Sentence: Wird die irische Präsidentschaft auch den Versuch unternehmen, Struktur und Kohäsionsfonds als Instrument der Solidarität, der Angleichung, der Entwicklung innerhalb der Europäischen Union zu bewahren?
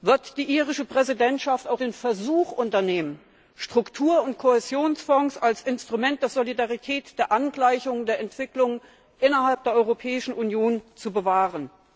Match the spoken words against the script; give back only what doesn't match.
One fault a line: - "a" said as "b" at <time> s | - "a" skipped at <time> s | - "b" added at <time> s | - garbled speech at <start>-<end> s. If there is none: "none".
none